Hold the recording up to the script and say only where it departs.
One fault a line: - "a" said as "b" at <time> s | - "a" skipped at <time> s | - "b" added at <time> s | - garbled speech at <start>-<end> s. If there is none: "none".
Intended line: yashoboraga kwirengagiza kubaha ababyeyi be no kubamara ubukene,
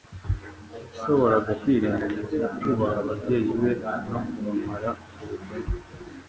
none